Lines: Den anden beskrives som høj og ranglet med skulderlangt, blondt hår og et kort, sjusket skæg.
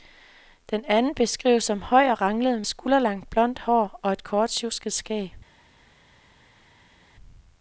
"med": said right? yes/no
no